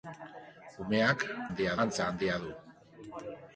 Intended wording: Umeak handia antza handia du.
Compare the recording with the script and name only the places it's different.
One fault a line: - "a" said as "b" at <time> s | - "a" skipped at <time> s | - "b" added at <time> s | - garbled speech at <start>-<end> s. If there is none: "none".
none